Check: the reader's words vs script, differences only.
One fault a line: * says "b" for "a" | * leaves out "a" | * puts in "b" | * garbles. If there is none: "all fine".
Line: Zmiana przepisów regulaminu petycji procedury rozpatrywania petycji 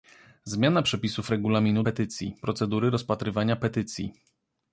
all fine